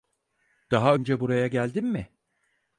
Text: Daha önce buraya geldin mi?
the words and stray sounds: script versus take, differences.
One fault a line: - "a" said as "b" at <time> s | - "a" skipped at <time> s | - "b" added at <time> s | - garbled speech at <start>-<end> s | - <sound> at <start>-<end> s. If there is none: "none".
none